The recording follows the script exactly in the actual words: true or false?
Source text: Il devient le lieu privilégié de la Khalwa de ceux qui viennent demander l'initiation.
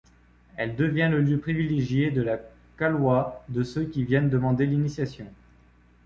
false